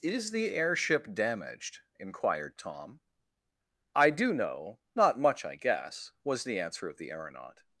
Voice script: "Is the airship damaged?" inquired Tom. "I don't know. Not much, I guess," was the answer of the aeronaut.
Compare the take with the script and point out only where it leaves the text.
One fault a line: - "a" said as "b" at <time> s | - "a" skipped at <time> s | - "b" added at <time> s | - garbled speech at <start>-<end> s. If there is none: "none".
- "don't" said as "do" at 4.1 s